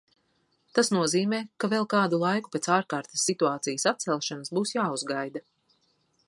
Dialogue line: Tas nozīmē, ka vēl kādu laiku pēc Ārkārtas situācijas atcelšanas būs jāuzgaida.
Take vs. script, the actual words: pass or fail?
pass